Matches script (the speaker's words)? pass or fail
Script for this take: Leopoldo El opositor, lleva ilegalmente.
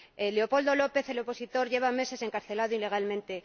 fail